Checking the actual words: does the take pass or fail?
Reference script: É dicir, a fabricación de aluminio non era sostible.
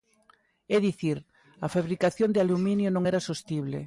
pass